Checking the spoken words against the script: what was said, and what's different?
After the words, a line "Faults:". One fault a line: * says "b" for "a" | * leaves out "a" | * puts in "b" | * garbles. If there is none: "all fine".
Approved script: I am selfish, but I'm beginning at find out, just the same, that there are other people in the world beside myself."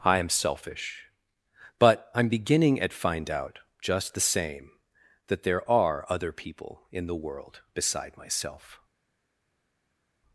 I am selfish, but I'm beginning at find out, just the same, that there are other people in the world beside myself."
Faults:
all fine